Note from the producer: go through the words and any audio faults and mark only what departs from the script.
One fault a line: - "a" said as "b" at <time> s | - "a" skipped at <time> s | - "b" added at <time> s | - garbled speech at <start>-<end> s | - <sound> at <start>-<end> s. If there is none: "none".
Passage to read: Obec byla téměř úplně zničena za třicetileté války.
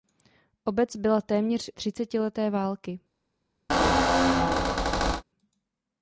- "úplně zničena za" skipped at 1.7 s
- squeak at 3.7-5.2 s